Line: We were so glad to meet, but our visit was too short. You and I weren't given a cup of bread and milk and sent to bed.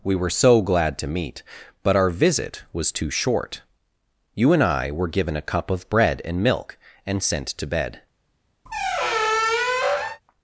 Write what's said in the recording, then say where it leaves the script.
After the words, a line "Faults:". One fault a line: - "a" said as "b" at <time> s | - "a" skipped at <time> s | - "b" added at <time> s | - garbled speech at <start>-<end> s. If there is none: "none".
We were so glad to meet, but our visit was too short. You and I were given a cup of bread and milk and sent to bed.
Faults:
- "weren't" said as "were" at 4.9 s